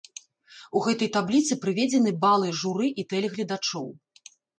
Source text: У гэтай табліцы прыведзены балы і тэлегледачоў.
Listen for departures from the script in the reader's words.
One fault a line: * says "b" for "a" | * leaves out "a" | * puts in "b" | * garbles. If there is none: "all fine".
* puts in "журы"